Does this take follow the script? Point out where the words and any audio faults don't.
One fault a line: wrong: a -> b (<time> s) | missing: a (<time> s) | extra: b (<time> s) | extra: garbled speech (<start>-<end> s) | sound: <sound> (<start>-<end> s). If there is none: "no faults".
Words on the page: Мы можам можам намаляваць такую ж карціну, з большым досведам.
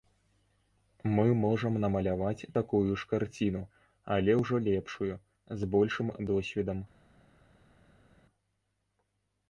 missing: можам (1.8 s)
extra: але ўжо лепшую (4.2 s)